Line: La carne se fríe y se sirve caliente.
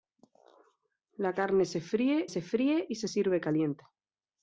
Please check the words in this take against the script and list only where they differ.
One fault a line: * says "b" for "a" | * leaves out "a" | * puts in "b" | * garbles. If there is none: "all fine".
* puts in "se fríe"